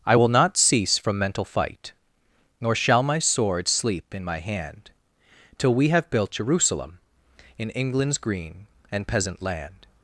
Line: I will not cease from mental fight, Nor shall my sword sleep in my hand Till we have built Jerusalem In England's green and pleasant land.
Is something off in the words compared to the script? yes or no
yes